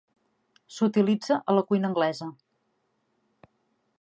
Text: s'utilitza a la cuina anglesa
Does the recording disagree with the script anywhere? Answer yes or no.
no